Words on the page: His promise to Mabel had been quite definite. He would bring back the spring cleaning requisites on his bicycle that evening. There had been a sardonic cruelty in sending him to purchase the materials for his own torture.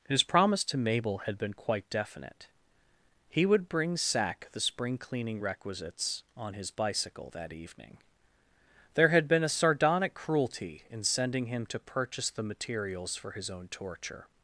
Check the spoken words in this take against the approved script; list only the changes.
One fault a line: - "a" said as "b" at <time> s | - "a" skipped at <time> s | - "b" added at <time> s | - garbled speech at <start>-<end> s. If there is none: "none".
- "back" said as "sack" at 4.0 s